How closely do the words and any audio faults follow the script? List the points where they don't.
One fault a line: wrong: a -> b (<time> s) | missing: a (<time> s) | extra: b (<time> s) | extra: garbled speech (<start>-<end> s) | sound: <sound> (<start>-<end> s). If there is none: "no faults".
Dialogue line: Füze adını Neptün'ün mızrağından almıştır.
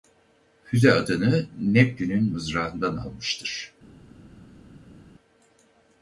no faults